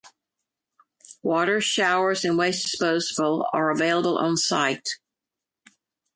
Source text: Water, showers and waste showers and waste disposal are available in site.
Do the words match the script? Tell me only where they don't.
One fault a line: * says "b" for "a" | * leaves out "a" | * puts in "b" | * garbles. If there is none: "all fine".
* leaves out "showers and waste"
* says "on" for "in"